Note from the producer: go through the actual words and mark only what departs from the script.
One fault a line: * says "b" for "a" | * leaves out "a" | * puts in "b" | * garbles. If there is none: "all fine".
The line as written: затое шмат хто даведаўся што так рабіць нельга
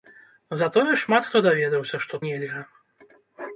* leaves out "так рабіць"